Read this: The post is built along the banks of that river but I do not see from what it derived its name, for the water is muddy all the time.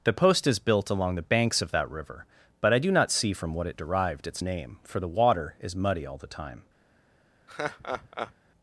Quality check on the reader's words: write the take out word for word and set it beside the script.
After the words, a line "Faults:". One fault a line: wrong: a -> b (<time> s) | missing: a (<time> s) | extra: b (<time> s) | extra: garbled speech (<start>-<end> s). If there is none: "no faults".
The post is built along the banks of that river but I do not see from what it derived its name, for the water is muddy all the time.
Faults:
no faults